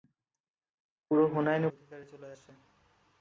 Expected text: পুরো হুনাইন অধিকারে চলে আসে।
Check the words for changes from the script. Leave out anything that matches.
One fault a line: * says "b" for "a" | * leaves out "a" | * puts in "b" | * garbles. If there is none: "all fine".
all fine